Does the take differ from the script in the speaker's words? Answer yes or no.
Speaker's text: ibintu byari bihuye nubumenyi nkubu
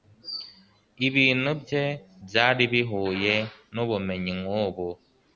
yes